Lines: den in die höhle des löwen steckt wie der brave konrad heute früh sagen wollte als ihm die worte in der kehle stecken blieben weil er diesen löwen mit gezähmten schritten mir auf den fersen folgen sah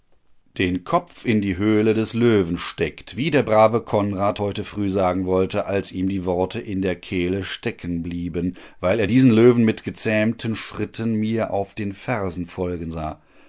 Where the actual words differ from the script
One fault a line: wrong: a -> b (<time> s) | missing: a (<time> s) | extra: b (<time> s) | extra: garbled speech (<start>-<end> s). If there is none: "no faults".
extra: kopf (0.8 s)